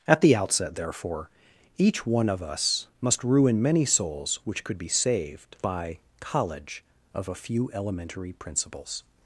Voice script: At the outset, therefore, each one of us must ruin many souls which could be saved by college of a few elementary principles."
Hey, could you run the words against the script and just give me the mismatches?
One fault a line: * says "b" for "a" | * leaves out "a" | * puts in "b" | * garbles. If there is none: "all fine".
all fine